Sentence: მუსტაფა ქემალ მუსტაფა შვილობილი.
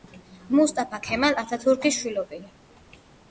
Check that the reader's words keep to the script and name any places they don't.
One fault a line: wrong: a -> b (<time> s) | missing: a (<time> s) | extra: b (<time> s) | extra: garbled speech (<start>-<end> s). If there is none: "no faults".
wrong: მუსტაფა -> ათათურქის (1.4 s)